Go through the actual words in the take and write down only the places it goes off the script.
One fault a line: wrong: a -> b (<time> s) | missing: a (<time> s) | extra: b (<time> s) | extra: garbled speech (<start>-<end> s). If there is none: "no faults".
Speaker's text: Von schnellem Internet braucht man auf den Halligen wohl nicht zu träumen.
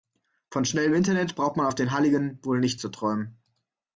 no faults